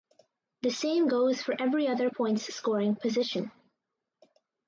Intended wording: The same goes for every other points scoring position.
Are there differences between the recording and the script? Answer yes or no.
no